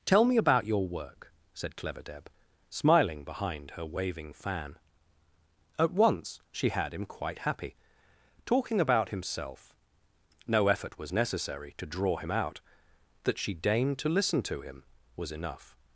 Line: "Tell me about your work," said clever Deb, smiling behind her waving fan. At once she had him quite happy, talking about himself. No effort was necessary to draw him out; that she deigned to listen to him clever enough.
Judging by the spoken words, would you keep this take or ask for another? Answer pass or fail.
fail